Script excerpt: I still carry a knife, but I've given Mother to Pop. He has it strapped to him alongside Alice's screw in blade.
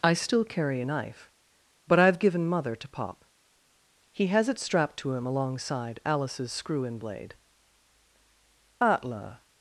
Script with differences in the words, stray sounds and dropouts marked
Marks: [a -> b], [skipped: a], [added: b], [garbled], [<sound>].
I still carry a knife, but I've given Mother to Pop. He has it strapped to him alongside Alice's screw in blade. [added: Atla]